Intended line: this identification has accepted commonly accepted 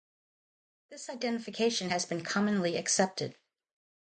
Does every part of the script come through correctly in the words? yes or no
no